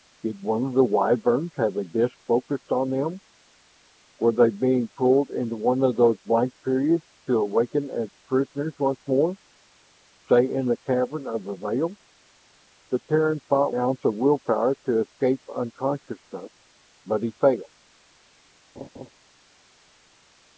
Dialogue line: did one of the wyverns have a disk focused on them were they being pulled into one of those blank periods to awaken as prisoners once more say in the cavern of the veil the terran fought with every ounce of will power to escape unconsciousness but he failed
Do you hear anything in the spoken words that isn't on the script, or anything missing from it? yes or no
yes